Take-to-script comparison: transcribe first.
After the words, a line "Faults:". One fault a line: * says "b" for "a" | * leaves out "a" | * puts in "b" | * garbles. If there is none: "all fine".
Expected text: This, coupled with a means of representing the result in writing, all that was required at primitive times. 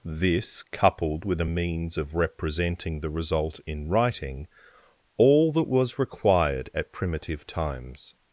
This, coupled with a means of representing the result in writing, all that was required at primitive times.
Faults:
all fine